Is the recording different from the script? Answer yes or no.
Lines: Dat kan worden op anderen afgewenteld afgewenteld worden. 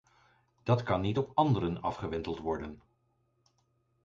yes